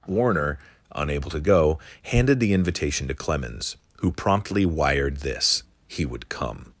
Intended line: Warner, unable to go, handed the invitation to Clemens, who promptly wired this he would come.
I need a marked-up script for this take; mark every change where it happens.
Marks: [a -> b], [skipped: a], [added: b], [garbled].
Warner, unable to go, handed the invitation to Clemens, who promptly wired this he would come.